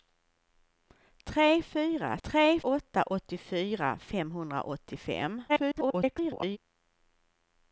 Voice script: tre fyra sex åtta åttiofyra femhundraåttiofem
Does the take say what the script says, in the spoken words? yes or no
no